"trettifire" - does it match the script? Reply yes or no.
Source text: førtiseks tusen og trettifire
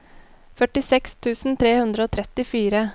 yes